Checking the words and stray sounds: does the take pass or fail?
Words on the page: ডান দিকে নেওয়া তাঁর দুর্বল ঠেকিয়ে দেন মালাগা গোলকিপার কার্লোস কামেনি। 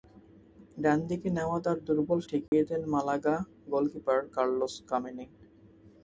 fail